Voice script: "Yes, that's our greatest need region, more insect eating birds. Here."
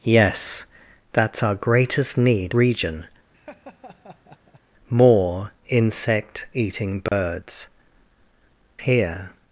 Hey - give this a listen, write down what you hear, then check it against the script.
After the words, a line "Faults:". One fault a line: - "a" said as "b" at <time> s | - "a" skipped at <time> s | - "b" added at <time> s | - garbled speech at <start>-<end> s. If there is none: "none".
"Yes, that's our greatest need region, more insect eating birds. Here."
Faults:
none